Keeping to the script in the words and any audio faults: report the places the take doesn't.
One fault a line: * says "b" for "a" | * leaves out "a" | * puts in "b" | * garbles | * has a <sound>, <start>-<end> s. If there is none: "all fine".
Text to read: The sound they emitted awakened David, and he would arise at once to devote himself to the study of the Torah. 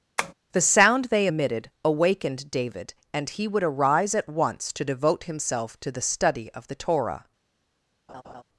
* has a tap, 0.2-0.3 s
* has a laugh, 8.1-8.4 s